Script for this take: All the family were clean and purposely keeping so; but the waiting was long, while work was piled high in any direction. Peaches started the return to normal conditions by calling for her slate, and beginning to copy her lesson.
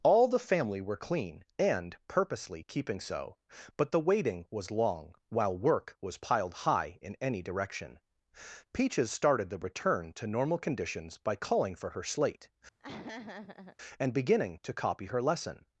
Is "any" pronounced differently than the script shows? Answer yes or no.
no